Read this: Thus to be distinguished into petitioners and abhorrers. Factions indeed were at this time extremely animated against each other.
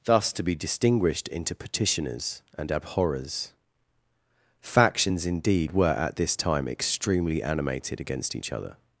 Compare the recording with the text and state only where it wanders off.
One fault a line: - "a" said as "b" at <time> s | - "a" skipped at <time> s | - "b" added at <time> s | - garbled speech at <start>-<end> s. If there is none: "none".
none